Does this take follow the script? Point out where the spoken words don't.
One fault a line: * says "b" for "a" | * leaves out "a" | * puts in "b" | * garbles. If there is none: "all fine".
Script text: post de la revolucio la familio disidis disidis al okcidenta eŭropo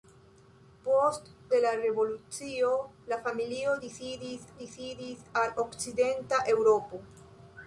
all fine